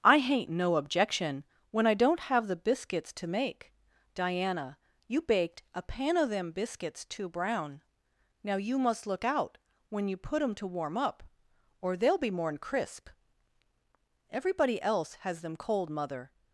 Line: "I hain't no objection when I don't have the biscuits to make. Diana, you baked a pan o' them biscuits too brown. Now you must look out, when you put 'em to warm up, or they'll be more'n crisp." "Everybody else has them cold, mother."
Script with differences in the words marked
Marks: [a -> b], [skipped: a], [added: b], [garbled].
"I hain't no objection when I don't have the biscuits to make. Diana, you baked a pan o' them biscuits too brown. Now you must look out, when you put 'em to warm up, or they'll be more'n crisp." "Everybody else has them cold, mother."